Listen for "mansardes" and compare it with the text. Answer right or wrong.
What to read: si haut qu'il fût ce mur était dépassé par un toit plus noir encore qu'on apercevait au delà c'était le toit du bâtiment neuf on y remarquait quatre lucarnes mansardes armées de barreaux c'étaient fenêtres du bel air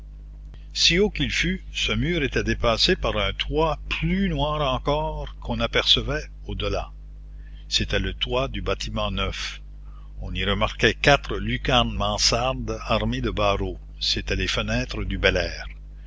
right